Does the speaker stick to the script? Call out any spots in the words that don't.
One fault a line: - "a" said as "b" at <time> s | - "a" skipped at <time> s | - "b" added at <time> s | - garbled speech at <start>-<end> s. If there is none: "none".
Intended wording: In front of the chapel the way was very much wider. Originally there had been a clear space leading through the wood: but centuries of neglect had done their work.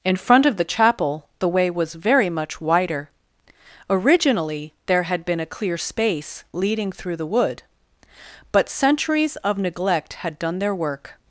none